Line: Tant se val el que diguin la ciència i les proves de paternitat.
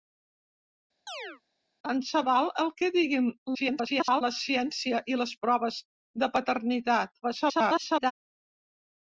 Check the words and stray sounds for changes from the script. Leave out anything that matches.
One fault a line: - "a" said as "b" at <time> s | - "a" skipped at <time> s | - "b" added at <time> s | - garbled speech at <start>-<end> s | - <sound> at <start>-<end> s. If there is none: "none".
- chirp at 1.1-1.4 s
- garbled speech at 3.5-4.2 s
- garbled speech at 7.2-8.1 s